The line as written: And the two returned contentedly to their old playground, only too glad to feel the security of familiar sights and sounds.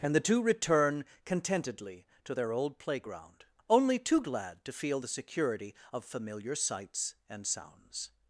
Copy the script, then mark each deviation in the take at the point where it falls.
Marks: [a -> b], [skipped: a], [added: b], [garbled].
And the two [returned -> return] contentedly to their old playground, only too glad to feel the security of familiar sights and sounds.